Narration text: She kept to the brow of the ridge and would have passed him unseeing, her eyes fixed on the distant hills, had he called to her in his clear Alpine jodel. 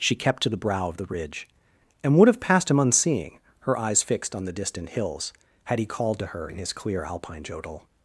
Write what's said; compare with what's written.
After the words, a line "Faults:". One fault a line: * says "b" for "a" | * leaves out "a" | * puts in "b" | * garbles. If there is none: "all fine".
She kept to the brow of the ridge and would have passed him unseeing, her eyes fixed on the distant hills, had he called to her in his clear Alpine jodel.
Faults:
all fine